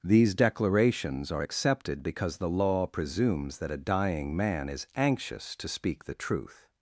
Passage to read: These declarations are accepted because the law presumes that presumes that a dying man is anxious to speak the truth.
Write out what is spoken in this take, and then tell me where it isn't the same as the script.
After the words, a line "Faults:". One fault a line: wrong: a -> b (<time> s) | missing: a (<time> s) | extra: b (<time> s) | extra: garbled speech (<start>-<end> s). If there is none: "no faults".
These declarations are accepted because the law presumes that a dying man is anxious to speak the truth.
Faults:
missing: presumes that (3.7 s)